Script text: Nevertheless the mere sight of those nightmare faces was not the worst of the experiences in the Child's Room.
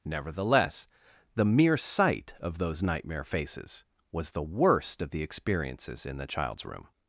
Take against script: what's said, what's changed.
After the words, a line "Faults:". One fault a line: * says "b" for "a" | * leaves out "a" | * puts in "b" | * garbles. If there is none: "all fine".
Nevertheless the mere sight of those nightmare faces was the worst of the experiences in the Child's Room.
Faults:
* leaves out "not"